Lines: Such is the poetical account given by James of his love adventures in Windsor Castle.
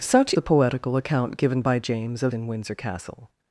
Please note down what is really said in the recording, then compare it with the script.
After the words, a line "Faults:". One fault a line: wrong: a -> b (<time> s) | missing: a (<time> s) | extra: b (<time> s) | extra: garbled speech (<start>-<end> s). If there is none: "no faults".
Such the poetical account given by James of in Windsor Castle.
Faults:
missing: is (0.3 s)
missing: his love adventures (2.3 s)